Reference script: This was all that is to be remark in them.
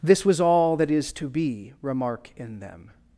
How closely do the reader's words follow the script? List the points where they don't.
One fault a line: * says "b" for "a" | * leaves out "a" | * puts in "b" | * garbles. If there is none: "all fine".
all fine